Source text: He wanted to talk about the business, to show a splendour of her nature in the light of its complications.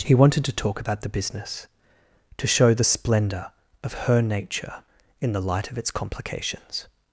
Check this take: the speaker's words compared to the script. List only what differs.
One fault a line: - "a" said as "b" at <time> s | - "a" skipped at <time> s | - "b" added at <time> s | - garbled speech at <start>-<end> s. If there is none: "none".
- "a" said as "the" at 2.7 s